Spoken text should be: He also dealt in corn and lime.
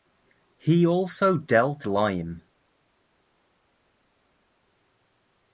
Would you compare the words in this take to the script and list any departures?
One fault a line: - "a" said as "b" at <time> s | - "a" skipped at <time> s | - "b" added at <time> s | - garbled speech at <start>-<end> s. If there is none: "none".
- "in corn and" skipped at 1.9 s